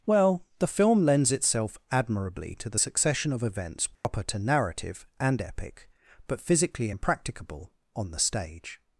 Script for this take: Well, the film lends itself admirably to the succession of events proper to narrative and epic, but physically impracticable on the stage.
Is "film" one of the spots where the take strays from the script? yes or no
no